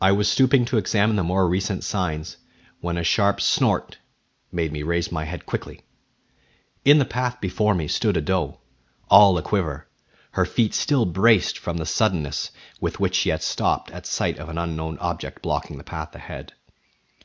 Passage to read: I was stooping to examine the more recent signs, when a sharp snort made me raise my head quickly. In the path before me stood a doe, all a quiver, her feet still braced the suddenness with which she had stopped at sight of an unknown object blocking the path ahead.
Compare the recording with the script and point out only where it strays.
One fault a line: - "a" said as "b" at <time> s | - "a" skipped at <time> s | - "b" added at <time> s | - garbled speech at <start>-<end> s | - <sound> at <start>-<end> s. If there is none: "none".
- "from" added at 11.6 s